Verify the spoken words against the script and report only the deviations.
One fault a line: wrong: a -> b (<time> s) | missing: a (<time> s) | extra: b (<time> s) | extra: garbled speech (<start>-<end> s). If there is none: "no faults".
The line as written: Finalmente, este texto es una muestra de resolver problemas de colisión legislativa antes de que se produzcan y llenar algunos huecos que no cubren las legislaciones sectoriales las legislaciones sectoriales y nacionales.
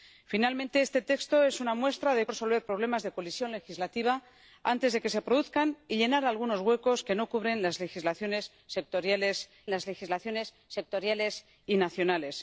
no faults